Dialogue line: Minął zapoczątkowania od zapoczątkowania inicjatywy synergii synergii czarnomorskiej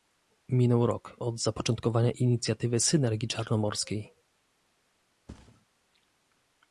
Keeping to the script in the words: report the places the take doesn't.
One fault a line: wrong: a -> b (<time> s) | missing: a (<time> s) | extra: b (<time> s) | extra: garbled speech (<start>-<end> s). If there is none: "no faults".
wrong: zapoczątkowania -> rok (0.8 s)
missing: synergii (3.3 s)